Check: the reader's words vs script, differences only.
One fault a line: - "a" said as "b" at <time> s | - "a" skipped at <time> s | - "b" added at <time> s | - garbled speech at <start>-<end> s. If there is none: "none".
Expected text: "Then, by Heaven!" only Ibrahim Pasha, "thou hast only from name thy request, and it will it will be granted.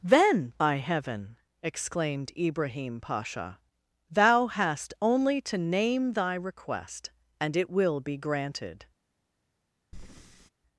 - "only" said as "exclaimed" at 1.6 s
- "from" said as "to" at 5.4 s
- "it will" skipped at 8.0 s